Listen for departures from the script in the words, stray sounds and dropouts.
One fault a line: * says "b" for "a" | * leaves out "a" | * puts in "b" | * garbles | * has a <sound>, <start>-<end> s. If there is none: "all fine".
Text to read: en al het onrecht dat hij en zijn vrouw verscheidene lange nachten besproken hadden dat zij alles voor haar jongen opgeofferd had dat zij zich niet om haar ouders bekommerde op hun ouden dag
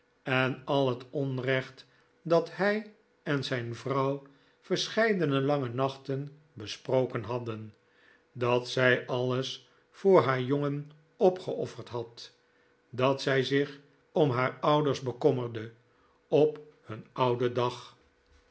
* leaves out "niet"